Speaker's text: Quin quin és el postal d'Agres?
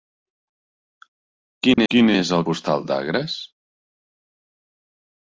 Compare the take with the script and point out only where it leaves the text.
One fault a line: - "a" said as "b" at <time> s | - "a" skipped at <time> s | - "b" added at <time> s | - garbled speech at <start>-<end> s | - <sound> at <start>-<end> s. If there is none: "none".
- dropout at 1.7-1.8 s